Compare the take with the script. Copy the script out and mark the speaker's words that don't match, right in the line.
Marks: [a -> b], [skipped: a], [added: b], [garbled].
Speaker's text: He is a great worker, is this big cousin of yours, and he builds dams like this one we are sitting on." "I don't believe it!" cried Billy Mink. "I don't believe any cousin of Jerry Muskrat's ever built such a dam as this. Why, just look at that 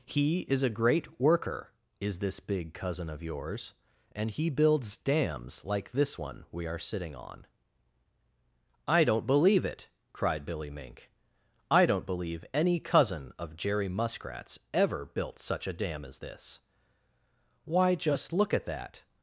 He is a great worker, is this big cousin of yours, and he builds dams like this one we are sitting on." "I don't believe it!" cried Billy Mink. "I don't believe any cousin of Jerry Muskrat's ever built such a dam as this. Why, just look at that